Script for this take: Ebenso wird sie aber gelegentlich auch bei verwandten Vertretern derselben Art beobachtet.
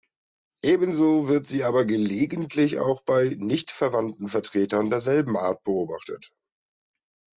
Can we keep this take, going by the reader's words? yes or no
no